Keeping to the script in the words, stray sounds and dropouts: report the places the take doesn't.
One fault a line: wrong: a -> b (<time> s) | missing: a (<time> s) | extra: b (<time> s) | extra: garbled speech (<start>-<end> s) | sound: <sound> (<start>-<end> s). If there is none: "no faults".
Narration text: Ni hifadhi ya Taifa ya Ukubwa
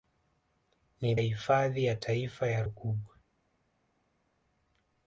no faults